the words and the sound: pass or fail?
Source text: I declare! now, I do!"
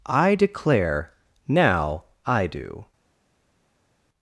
pass